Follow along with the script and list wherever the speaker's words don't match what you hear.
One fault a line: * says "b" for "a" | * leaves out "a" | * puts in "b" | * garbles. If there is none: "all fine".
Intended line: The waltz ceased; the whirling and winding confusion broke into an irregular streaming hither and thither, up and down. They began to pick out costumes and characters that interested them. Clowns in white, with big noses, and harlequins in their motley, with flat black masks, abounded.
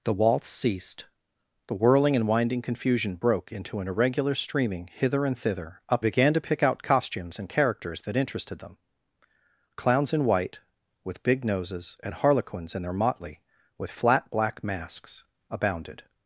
* leaves out "and down They"